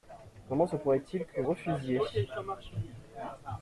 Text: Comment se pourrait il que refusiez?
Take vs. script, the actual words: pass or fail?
pass